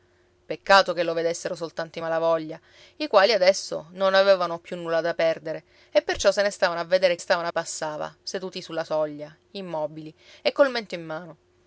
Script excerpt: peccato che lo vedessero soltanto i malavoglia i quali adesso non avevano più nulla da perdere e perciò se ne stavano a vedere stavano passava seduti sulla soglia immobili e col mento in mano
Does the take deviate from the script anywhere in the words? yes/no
no